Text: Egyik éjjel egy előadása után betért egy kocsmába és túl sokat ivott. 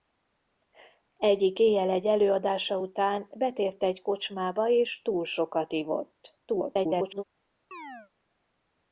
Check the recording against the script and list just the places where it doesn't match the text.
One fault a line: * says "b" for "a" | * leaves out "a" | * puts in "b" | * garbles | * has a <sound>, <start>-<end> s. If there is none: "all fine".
* garbles
* has a chirp, 7.7-8.1 s